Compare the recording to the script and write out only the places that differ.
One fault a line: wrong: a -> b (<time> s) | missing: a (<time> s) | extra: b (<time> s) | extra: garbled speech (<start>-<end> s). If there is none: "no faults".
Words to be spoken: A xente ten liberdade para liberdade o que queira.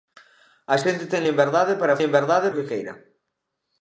no faults